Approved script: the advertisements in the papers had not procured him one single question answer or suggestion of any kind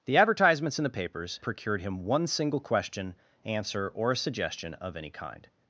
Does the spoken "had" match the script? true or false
false